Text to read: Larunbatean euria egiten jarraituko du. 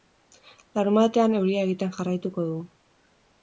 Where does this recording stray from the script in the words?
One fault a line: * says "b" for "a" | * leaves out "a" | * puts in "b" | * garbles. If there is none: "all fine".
all fine